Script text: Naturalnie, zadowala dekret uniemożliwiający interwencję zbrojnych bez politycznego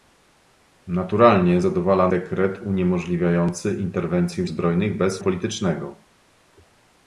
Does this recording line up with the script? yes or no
yes